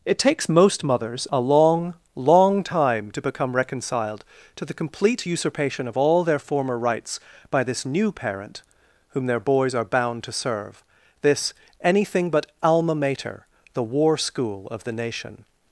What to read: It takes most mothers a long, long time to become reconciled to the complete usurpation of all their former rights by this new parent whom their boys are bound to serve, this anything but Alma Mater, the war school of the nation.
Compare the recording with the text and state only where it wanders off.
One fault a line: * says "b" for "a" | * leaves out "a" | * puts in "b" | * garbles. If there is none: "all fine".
all fine